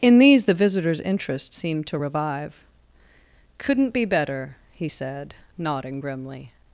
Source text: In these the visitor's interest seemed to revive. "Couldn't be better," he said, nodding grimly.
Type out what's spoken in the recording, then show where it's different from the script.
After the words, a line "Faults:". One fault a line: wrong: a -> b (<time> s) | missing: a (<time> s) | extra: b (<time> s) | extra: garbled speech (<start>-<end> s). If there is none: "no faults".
In these the visitor's interest seemed to revive. "Couldn't be better," he said, nodding grimly.
Faults:
no faults